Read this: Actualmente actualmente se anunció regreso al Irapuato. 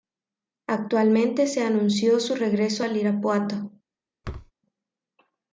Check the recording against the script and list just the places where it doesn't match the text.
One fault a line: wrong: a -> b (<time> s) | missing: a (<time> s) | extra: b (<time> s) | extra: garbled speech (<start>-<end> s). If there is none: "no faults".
missing: actualmente (1.4 s)
extra: su (2.2 s)